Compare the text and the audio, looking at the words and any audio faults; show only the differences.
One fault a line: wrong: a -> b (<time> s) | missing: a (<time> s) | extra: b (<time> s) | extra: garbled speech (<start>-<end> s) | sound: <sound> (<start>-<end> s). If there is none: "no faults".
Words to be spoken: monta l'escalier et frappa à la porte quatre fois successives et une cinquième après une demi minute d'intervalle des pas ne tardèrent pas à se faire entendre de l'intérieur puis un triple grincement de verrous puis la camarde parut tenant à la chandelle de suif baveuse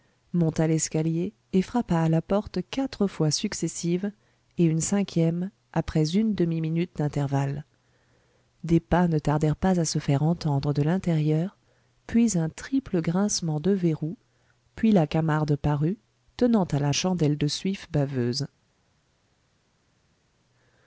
no faults